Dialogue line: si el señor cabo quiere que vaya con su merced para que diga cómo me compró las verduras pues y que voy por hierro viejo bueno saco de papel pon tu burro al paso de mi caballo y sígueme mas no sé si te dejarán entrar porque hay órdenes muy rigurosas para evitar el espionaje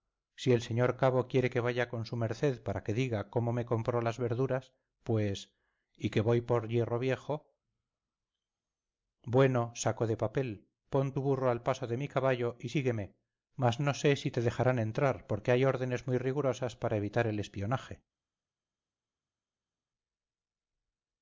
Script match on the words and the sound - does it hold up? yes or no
yes